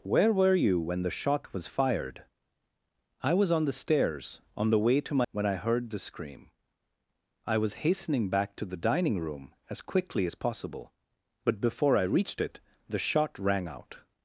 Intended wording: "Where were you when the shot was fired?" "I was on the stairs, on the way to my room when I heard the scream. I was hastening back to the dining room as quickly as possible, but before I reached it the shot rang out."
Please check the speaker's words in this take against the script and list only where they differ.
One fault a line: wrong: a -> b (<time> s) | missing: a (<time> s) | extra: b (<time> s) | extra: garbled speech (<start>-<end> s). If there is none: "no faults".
missing: room (5.3 s)